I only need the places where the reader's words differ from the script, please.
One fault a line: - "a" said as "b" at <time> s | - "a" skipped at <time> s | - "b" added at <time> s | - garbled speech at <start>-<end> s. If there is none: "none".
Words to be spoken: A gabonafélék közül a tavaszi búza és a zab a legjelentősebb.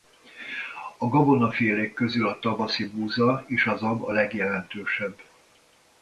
none